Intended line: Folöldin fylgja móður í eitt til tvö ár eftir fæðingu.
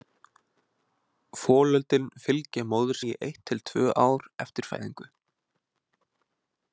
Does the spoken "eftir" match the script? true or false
true